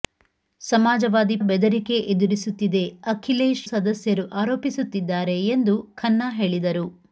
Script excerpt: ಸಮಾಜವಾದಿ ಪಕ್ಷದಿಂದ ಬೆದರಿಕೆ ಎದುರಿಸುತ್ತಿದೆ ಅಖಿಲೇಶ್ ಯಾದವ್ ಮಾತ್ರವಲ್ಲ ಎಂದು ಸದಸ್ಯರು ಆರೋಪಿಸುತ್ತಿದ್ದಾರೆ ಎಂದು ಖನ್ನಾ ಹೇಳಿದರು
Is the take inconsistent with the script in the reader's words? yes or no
yes